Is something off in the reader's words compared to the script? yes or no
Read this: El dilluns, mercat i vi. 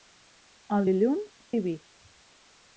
yes